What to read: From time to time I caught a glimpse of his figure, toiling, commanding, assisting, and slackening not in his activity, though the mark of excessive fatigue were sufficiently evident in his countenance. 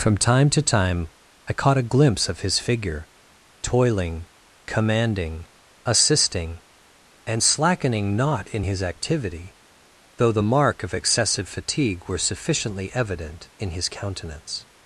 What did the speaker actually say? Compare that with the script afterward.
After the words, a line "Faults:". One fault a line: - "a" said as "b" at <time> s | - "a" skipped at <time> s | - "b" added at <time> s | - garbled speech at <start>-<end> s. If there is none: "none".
From time to time I caught a glimpse of his figure, toiling, commanding, assisting, and slackening not in his activity, though the mark of excessive fatigue were sufficiently evident in his countenance.
Faults:
none